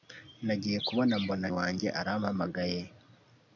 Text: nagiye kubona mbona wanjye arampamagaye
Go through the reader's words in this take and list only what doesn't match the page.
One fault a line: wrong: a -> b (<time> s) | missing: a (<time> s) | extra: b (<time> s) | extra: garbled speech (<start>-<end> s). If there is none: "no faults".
no faults